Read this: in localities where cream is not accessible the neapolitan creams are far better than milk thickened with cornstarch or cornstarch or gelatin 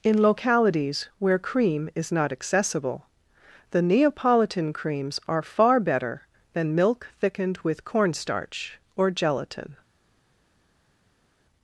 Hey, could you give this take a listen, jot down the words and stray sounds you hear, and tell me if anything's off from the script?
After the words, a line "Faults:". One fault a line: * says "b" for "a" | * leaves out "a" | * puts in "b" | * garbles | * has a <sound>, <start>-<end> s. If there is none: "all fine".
in localities where cream is not accessible the neapolitan creams are far better than milk thickened with cornstarch or gelatin
Faults:
* leaves out "cornstarch or"